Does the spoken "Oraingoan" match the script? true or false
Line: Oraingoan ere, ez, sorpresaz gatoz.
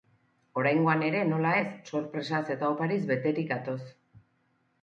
true